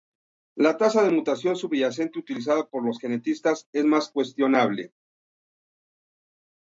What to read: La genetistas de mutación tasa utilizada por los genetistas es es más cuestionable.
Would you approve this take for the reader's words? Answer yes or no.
no